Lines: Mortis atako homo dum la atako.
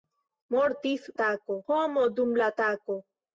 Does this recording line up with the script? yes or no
yes